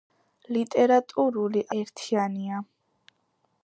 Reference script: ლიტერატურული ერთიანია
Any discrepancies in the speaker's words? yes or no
no